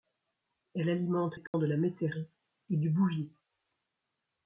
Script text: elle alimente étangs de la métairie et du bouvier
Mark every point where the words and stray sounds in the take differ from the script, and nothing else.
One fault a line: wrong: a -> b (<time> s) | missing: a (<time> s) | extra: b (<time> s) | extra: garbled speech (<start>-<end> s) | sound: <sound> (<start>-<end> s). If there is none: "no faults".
sound: dropout (1.5-1.5 s)